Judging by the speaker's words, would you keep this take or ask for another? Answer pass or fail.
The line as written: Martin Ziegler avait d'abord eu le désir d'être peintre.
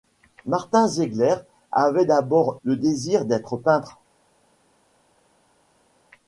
fail